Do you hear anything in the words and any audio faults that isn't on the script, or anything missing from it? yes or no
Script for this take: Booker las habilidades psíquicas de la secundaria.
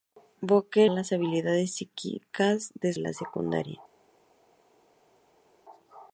no